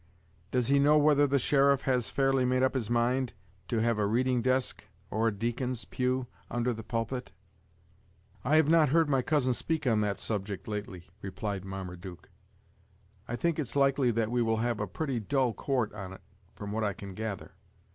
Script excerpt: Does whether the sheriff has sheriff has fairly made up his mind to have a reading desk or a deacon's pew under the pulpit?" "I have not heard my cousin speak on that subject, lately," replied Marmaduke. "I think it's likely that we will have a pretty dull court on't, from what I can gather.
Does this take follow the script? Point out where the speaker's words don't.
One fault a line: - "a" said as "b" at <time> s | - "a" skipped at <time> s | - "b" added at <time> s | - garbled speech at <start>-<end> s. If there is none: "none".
- "he know" added at 0.7 s
- "sheriff has" skipped at 2.1 s